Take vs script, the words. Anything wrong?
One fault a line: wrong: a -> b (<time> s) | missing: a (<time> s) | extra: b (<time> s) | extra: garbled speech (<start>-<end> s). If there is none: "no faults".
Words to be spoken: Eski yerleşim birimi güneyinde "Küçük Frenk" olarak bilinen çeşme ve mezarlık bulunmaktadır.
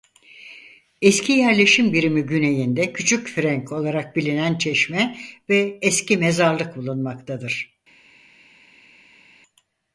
extra: eski (5.8 s)